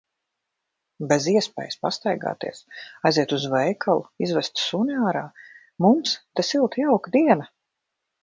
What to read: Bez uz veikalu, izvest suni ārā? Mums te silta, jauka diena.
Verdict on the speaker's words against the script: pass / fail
fail